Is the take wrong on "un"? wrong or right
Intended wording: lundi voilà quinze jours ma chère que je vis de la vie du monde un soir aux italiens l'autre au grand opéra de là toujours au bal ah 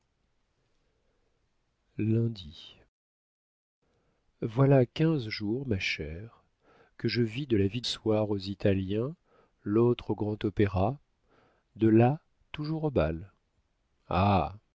wrong